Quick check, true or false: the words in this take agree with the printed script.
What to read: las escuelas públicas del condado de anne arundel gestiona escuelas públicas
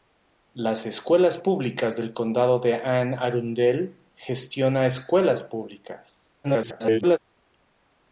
false